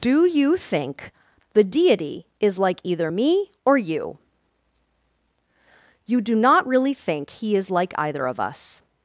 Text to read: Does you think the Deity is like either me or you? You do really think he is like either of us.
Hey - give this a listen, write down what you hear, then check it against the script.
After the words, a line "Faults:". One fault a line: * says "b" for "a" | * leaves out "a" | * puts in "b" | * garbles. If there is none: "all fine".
Do you think the Deity is like either me or you? You do not really think he is like either of us.
Faults:
* says "Do" for "Does"
* puts in "not"